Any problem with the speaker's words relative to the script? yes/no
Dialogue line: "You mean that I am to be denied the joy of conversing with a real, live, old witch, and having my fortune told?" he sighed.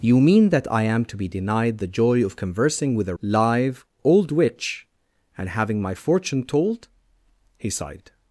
yes